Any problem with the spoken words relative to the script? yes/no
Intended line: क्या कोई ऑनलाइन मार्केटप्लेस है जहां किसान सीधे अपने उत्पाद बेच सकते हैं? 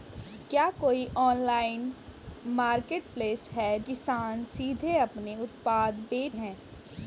yes